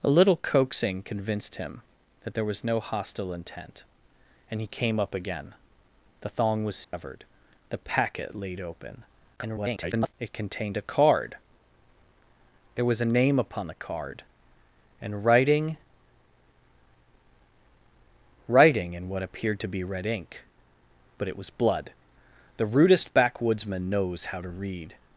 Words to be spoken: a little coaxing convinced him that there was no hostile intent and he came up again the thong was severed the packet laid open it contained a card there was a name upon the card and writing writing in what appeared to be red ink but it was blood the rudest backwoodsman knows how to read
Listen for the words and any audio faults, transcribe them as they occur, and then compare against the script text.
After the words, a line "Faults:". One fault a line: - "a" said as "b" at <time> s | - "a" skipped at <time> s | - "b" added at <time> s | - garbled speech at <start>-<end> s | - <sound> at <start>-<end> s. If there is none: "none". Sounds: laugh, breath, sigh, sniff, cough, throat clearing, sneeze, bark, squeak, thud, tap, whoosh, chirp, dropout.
a little coaxing convinced him that there was no hostile intent and he came up again the thong was severed the packet laid open [garbled] it contained a card there was a name upon the card and writing writing in what appeared to be red ink but it was blood the rudest backwoodsman knows how to read
Faults:
- dropout at 6.8-6.9 s
- garbled speech at 9.4-10.1 s